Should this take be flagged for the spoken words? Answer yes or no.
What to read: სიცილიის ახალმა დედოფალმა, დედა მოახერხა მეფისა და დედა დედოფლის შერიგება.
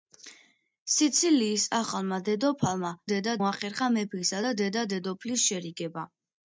no